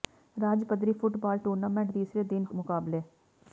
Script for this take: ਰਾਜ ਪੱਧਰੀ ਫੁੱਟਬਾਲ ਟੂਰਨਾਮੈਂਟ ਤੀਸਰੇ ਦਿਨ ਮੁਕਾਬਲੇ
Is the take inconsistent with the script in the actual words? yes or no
no